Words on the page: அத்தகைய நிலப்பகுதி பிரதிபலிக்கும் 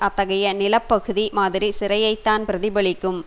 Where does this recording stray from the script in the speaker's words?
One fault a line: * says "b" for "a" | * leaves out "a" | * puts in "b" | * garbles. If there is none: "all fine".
* puts in "மாதிரி சிறையைத்தான்"